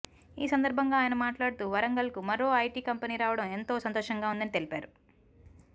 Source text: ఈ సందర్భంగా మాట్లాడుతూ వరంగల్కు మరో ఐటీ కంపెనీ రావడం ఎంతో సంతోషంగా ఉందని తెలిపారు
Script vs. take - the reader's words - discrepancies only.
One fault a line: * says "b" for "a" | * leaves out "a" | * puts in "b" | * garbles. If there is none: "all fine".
* puts in "ఆయన"